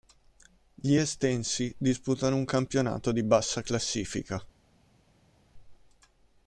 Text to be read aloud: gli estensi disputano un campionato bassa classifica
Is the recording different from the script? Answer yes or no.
yes